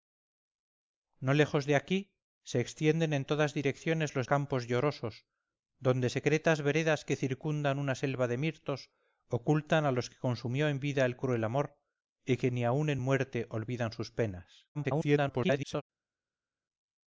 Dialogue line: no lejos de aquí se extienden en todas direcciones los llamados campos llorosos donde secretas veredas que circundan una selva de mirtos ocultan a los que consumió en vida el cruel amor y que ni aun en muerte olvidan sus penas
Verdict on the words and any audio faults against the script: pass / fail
fail